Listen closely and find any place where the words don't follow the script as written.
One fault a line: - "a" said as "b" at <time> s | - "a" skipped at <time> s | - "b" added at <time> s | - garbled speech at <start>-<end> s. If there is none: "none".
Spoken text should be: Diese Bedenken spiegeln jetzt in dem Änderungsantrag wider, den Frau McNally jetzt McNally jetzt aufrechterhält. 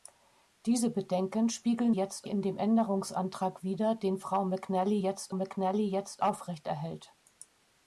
none